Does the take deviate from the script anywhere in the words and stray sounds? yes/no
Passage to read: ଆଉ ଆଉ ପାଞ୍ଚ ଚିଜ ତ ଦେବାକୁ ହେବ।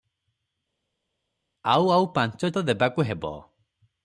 yes